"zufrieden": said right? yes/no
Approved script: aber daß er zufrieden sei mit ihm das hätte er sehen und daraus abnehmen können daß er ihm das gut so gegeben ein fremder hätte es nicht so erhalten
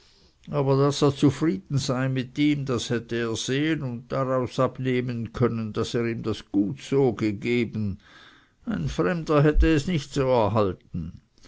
yes